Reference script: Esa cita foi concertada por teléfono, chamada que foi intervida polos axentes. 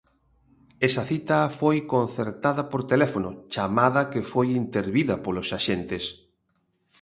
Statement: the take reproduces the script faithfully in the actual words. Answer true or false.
true